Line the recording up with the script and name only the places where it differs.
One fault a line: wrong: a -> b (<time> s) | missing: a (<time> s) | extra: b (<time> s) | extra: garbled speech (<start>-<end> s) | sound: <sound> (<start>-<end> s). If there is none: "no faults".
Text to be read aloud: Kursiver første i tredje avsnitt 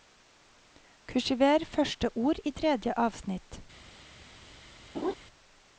extra: ord (2.1 s)
sound: laugh (4.9-5.1 s)